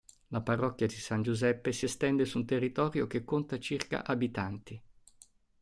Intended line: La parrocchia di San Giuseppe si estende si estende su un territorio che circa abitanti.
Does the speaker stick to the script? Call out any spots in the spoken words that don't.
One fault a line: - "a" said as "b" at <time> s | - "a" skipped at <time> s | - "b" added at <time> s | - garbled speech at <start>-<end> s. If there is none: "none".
- "si estende" skipped at 2.2 s
- "conta" added at 3.3 s